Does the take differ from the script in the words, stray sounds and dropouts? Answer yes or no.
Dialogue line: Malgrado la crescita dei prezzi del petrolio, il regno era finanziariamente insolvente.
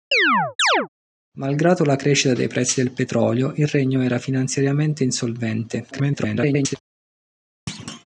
yes